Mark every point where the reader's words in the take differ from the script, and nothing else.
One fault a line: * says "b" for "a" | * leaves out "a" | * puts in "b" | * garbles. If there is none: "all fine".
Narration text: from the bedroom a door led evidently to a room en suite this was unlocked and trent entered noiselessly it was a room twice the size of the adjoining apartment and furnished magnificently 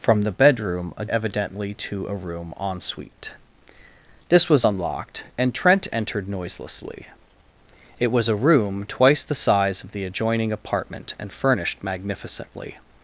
* leaves out "door led"